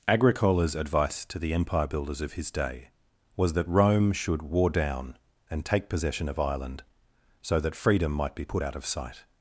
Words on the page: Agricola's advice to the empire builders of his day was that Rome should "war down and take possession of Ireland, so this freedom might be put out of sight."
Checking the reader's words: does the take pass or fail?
fail